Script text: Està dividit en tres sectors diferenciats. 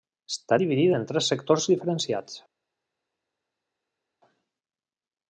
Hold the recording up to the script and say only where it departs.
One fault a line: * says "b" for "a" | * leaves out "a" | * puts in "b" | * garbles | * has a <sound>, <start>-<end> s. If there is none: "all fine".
all fine